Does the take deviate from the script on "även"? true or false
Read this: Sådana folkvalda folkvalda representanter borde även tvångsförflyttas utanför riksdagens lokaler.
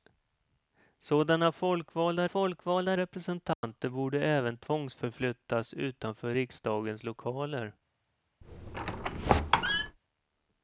false